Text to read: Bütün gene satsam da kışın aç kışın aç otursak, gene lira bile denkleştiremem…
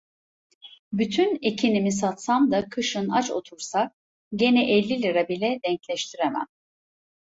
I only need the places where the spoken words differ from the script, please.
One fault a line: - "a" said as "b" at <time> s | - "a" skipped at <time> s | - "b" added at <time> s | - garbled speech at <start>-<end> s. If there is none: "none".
- "gene" said as "ekinimi" at 1.4 s
- "kışın aç" skipped at 3.3 s
- "elli" added at 4.7 s